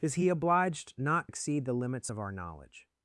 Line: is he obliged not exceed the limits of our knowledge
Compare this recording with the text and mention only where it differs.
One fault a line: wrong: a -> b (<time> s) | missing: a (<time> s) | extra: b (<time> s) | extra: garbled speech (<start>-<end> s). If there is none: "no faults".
no faults